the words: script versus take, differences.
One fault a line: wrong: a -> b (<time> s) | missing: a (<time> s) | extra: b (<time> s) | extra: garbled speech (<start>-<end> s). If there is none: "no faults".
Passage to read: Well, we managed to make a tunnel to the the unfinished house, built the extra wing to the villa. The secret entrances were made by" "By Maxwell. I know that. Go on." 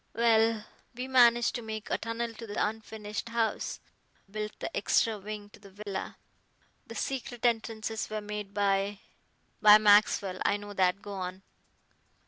no faults